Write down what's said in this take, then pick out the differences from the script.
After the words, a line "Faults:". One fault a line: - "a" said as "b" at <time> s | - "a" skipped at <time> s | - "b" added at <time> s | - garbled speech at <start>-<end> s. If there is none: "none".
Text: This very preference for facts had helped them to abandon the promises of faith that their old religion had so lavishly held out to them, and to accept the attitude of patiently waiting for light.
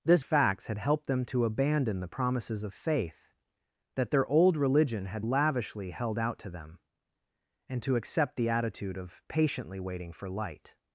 This facts had helped them to abandon the promises of faith that their old religion had lavishly held out to them, and to accept the attitude of patiently waiting for light.
Faults:
- "very preference for" skipped at 0.2 s
- "so" skipped at 5.2 s